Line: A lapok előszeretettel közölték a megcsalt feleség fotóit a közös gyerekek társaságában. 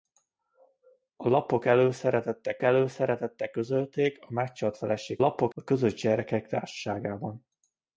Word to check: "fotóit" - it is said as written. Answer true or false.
false